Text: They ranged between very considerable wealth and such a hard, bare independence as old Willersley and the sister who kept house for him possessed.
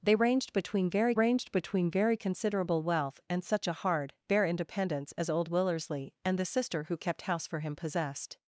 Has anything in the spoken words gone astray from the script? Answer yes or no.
yes